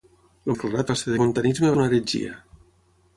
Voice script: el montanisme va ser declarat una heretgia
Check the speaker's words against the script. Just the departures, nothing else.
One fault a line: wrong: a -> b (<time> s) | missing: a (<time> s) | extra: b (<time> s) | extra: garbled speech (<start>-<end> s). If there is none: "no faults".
wrong: montanisme -> declarat (0.5 s)
wrong: declarat -> montanisme (1.2 s)